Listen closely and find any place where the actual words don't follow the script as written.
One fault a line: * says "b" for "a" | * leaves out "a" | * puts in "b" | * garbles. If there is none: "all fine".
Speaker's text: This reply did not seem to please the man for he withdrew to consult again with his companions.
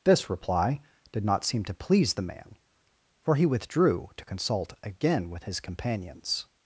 all fine